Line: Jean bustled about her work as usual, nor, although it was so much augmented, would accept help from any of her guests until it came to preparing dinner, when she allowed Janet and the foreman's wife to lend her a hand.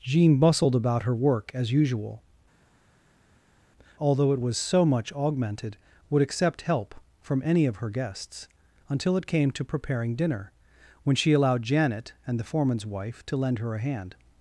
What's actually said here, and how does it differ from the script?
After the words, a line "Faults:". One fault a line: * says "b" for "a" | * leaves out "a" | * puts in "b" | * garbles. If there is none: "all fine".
Jean bustled about her work as usual, although it was so much augmented, would accept help from any of her guests until it came to preparing dinner, when she allowed Janet and the foreman's wife to lend her a hand.
Faults:
* leaves out "nor"